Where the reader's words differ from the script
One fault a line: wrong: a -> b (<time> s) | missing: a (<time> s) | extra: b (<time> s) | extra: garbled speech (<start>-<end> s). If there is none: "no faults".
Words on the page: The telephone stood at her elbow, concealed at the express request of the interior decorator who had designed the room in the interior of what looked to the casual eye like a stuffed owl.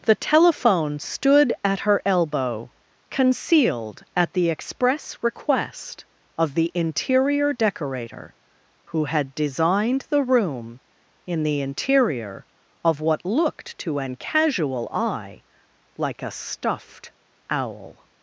wrong: the -> an (14.0 s)